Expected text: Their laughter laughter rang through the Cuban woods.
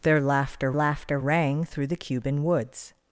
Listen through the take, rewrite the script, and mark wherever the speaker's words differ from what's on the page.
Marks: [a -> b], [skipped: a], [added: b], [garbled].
Their laughter laughter rang through the Cuban woods.